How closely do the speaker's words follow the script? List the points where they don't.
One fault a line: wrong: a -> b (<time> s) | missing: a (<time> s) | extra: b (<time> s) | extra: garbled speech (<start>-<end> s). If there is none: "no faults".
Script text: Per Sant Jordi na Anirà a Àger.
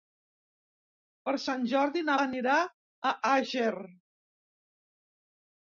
no faults